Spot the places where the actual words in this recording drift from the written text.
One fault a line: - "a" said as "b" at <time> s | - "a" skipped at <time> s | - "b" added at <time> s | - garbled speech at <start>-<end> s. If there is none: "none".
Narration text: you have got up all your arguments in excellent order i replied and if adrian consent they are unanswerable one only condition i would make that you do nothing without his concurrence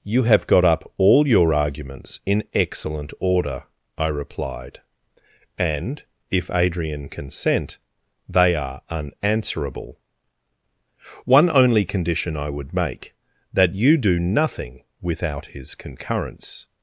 none